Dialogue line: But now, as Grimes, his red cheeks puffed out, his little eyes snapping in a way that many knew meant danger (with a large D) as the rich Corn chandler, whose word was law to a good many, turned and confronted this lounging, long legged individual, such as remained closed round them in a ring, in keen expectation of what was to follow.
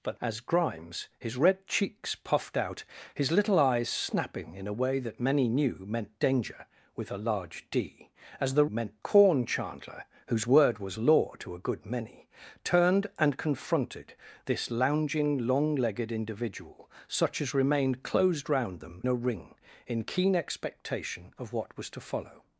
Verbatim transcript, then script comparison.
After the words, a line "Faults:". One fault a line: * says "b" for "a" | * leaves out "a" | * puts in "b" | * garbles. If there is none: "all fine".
But as Grimes, his red cheeks puffed out, his little eyes snapping in a way that many knew meant danger (with a large D) as the meant Corn chandler, whose word was law to a good many, turned and confronted this lounging, long legged individual, such as remained closed round them a ring, in keen expectation of what was to follow.
Faults:
* leaves out "now"
* says "meant" for "rich"
* leaves out "in"